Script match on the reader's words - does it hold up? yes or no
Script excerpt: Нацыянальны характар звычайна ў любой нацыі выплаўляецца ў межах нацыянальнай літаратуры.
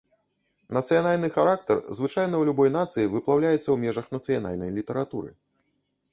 yes